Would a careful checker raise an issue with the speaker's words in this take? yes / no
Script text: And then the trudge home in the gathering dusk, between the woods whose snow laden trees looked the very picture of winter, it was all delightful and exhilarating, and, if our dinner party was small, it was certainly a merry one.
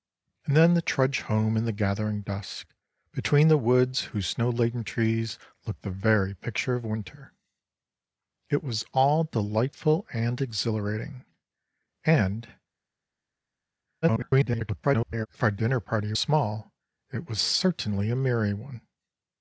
yes